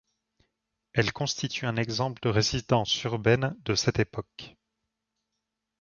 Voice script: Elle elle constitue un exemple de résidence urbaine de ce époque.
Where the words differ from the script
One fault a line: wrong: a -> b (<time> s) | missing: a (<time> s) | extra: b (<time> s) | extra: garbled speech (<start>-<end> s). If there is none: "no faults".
missing: elle (1.1 s)
wrong: ce -> cette (3.7 s)